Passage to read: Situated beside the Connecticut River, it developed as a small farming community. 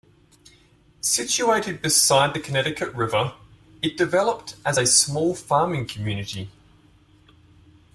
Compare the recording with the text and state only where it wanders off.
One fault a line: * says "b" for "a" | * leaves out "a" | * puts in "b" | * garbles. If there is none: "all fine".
all fine